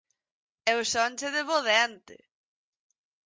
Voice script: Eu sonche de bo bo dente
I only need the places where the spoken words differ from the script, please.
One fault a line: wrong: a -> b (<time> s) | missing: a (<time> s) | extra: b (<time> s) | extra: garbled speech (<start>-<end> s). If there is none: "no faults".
missing: bo (1.6 s)